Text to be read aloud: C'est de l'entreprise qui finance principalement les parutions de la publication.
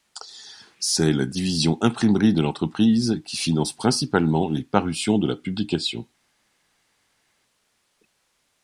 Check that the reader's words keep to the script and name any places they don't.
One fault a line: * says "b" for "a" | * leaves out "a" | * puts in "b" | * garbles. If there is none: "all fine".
* puts in "la division imprimerie"